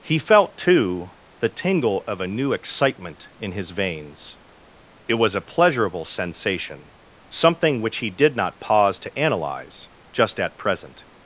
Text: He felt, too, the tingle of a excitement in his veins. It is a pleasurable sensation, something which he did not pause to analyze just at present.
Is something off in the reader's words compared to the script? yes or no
yes